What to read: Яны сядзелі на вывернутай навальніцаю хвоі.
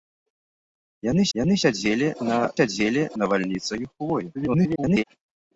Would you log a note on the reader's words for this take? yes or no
yes